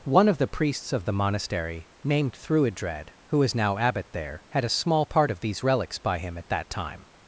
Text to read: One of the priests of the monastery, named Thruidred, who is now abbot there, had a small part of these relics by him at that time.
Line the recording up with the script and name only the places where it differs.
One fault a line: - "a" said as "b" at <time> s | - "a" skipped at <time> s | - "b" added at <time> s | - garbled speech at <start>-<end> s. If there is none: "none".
none